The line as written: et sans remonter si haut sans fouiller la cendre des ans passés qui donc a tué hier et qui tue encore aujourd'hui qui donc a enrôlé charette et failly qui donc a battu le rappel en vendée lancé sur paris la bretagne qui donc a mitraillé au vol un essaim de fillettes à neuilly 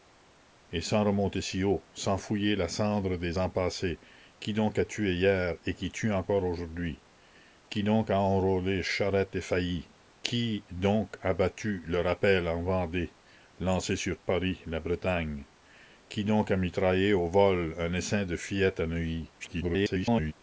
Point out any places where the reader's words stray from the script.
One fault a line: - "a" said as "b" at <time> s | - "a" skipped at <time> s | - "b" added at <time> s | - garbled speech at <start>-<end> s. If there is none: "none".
- garbled speech at 19.4-20.3 s